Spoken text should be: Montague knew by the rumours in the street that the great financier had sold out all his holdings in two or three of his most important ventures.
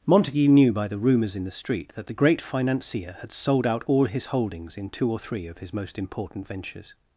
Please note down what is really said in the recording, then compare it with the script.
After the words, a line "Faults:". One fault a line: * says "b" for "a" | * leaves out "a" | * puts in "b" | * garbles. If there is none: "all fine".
Montague knew by the rumours in the street that the great financier had sold out all his holdings in two or three of his most important ventures.
Faults:
all fine